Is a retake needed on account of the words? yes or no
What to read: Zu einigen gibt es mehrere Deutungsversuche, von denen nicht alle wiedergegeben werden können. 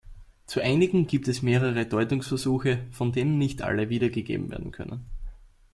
no